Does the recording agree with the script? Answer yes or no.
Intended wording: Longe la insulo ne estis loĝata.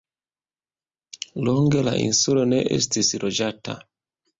yes